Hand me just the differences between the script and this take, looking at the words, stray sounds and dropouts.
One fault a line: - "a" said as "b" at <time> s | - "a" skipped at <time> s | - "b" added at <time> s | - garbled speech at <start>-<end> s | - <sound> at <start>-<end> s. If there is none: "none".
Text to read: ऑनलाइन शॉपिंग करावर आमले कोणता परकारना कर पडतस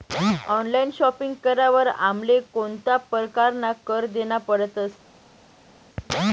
- "देना" added at 4.1 s